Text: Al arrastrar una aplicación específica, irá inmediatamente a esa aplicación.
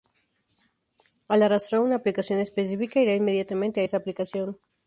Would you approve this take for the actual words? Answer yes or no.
yes